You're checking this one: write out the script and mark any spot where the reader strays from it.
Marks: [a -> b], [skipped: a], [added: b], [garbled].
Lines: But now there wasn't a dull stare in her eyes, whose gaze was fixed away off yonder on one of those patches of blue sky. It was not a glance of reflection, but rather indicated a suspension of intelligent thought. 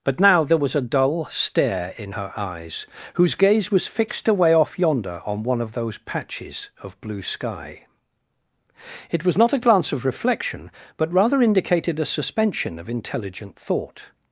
But now there [wasn't -> was] a dull stare in her eyes, whose gaze was fixed away off yonder on one of those patches of blue sky. It was not a glance of reflection, but rather indicated a suspension of intelligent thought.